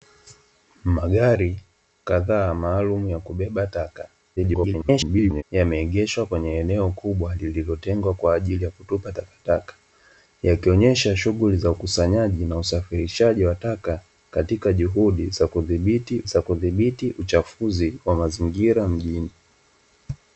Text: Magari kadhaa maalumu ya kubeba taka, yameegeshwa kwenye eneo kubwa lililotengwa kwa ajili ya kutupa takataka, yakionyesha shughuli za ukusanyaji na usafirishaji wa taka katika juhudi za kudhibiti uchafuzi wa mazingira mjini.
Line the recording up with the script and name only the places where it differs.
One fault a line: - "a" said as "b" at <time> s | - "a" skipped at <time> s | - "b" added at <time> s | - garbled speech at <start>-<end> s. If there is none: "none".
- garbled speech at 4.4-5.4 s
- "za kudhibiti" added at 16.2 s